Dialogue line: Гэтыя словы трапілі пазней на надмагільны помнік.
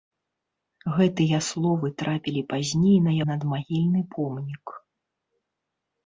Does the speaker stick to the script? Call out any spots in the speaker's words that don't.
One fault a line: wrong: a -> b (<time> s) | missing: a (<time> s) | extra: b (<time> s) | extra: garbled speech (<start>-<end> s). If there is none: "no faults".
no faults